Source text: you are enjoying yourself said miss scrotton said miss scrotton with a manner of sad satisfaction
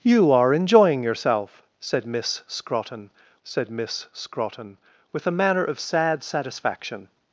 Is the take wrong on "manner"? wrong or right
right